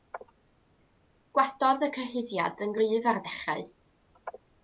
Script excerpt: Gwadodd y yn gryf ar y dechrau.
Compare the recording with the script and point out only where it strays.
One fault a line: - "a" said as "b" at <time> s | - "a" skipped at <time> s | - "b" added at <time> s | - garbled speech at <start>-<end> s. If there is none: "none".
- "cyhuddiad" added at 2.0 s